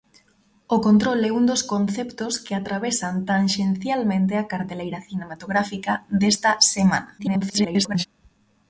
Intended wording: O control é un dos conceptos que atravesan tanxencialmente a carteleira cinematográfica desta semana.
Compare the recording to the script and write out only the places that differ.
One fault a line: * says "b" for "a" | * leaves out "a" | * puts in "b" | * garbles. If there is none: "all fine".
* garbles